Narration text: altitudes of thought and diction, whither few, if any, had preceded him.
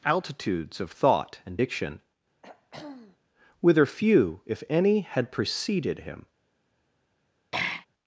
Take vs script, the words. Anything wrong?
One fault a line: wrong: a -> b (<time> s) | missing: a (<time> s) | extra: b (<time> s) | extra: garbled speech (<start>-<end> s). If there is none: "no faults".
no faults